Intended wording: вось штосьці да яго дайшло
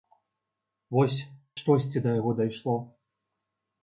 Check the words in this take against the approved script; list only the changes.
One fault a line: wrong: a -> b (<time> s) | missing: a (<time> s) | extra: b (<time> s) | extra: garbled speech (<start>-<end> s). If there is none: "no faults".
no faults